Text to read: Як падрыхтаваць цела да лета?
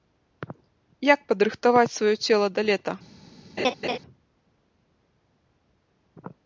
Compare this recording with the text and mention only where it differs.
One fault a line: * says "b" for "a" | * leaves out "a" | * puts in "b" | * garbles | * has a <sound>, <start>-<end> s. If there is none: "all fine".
* puts in "сваё"
* has a laugh, 3.6-4.0 s